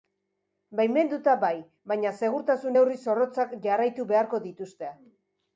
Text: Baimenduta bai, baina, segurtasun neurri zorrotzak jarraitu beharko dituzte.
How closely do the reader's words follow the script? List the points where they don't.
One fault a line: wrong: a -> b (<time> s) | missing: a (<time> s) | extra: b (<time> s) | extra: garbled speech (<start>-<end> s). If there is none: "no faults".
no faults